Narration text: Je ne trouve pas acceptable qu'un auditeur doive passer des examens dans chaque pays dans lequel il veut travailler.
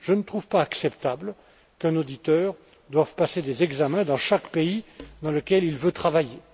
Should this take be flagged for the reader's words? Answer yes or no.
no